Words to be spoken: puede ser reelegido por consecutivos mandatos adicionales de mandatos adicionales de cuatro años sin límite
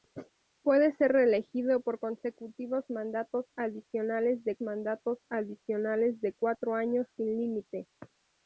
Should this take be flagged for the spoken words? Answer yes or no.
no